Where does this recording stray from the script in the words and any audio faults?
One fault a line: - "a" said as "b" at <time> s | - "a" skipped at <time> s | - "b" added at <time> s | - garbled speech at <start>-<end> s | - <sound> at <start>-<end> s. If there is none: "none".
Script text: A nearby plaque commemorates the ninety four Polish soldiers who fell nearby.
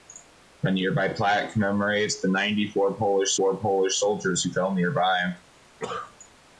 - "four Polish" added at 3.3 s
- cough at 5.8-6.2 s